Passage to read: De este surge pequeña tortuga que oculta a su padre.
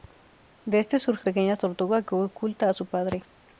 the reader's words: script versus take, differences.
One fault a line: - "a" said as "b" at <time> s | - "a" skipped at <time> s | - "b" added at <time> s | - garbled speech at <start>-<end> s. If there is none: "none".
none